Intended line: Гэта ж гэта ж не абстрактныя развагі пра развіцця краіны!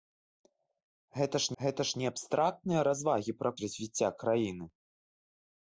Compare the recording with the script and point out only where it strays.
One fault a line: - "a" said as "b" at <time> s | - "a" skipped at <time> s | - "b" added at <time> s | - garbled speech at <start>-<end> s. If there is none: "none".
none